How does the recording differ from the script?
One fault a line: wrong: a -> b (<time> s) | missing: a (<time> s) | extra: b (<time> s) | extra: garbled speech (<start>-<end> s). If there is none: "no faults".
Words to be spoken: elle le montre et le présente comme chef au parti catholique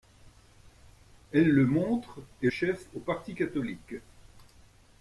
missing: le présente comme (2.5 s)